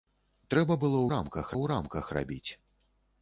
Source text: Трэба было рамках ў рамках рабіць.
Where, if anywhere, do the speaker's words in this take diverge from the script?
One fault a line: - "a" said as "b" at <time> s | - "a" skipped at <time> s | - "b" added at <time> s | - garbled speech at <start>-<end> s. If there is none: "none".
none